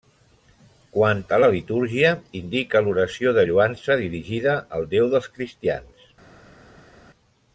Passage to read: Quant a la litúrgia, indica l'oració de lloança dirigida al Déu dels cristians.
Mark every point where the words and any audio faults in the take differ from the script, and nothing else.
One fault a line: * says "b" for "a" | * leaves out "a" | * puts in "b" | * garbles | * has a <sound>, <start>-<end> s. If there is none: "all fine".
all fine